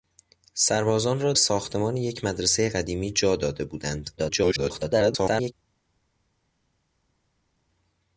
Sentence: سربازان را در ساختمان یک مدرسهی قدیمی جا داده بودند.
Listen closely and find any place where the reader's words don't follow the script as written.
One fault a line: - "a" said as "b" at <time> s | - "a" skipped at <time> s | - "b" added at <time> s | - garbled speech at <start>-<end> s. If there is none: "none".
- "در" skipped at 1.3 s
- garbled speech at 4.2-5.5 s